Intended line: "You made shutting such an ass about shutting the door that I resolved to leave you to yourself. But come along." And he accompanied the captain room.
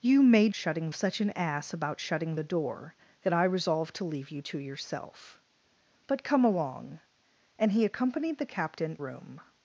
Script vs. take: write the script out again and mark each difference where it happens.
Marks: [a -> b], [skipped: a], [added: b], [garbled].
"You made shutting such an ass about shutting the door that I resolved to leave you to yourself. But come along." And he accompanied the captain room.